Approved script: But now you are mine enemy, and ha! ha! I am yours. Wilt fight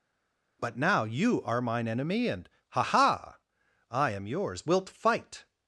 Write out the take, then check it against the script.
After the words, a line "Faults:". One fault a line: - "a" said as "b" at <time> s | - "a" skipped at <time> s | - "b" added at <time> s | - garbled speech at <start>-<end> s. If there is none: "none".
But now you are mine enemy, and ha! ha! I am yours. Wilt fight
Faults:
none